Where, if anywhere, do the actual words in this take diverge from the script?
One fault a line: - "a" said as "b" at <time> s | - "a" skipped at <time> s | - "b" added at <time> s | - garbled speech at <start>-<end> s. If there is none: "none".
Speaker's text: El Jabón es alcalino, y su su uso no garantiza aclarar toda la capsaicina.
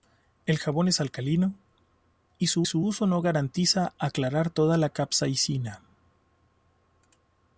none